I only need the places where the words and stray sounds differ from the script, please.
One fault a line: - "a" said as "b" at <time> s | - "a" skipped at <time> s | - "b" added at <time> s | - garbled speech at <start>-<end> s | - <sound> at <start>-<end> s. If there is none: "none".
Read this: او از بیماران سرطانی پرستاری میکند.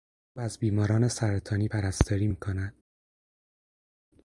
none